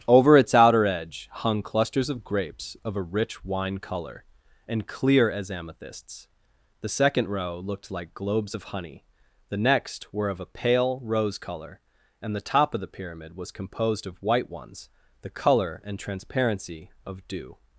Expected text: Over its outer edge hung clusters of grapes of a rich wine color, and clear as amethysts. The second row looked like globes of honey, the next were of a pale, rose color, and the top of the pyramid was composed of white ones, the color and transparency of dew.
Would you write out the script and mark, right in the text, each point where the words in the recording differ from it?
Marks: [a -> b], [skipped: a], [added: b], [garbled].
Over its outer edge hung clusters of grapes of a rich wine color, and clear as amethysts. The second row looked like globes of honey, the next were of a pale, rose color, and the top of the pyramid was composed of white ones, the color and transparency of dew.